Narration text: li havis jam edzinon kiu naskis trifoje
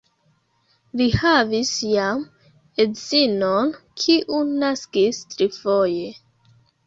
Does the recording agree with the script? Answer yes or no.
yes